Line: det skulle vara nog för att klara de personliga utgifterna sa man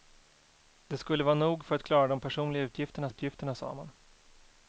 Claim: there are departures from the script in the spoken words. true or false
true